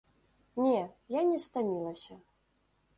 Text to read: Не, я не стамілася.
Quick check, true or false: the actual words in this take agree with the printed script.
true